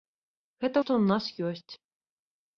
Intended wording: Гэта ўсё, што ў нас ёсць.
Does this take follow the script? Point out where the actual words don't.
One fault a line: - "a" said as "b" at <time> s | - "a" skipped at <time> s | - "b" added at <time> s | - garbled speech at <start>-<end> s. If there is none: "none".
- "ўсё" skipped at 0.8 s